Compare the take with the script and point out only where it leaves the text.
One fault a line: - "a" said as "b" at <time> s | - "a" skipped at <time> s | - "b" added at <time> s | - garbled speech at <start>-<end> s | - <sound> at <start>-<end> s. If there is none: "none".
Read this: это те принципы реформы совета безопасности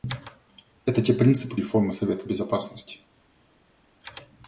none